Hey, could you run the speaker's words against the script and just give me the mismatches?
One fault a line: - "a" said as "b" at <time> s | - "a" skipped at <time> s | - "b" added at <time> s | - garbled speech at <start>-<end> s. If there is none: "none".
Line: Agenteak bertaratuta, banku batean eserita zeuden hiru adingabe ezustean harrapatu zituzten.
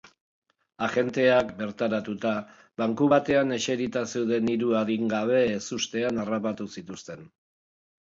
none